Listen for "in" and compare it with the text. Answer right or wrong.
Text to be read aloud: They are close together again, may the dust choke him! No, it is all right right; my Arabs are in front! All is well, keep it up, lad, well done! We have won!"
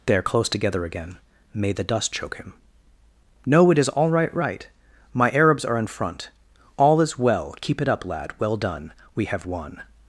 right